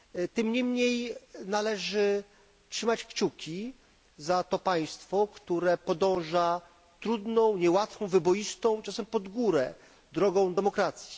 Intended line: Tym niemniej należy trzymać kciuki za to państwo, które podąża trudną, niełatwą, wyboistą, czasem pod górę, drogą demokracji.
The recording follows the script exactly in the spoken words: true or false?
true